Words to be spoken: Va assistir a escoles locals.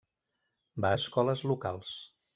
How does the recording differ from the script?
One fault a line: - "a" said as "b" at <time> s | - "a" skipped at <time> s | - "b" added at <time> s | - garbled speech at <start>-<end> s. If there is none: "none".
- "assistir" skipped at 0.9 s